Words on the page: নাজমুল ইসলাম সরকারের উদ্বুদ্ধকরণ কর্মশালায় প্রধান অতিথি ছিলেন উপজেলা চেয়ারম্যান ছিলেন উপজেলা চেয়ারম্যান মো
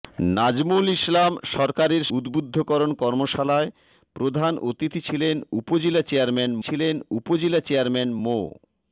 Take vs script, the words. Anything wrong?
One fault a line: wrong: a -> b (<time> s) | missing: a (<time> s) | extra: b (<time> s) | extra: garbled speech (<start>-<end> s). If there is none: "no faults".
no faults